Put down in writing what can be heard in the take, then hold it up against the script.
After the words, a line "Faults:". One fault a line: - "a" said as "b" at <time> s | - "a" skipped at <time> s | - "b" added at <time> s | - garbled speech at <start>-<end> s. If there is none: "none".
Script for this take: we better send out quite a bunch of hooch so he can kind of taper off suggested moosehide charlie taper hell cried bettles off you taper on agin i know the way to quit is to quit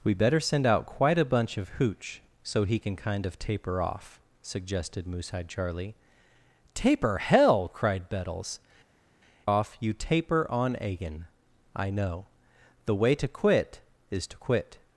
we better send out quite a bunch of hooch so he can kind of taper off suggested moosehide charlie taper hell cried bettles off you taper on agin i know the way to quit is to quit
Faults:
none